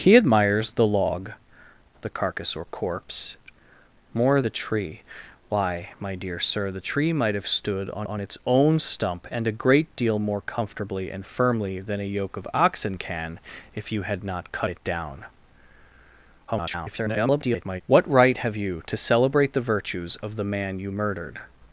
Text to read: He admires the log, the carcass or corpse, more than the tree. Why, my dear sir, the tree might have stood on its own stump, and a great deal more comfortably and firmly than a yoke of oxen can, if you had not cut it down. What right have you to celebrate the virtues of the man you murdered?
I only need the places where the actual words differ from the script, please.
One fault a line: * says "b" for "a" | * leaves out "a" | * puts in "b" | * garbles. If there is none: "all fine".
* leaves out "than"
* puts in "on"
* garbles